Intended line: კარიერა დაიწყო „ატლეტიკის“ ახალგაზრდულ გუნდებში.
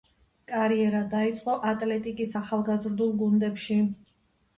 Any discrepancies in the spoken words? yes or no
no